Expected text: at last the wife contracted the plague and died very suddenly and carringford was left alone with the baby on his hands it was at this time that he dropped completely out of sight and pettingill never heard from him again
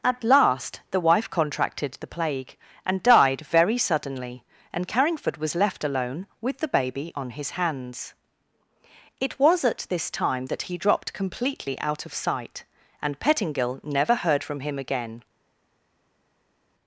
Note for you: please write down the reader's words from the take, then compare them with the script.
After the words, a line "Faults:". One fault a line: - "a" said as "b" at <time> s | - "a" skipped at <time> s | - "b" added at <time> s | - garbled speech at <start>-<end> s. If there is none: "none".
at last the wife contracted the plague and died very suddenly and carringford was left alone with the baby on his hands it was at this time that he dropped completely out of sight and pettingill never heard from him again
Faults:
none